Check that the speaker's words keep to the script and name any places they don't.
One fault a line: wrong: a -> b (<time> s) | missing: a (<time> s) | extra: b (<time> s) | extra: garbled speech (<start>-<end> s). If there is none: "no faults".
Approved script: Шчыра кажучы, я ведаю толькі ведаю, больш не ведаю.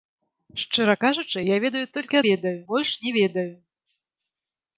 no faults